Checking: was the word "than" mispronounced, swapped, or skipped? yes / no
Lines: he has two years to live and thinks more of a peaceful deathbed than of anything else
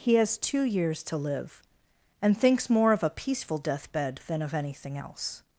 no